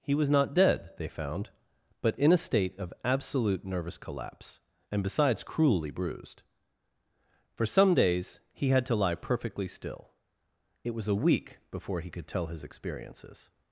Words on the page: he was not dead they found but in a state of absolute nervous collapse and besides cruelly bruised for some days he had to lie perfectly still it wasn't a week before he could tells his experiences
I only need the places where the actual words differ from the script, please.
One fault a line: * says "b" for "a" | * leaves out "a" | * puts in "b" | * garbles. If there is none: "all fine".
* says "was" for "wasn't"
* says "tell" for "tells"